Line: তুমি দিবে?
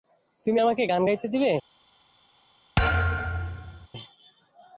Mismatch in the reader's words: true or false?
true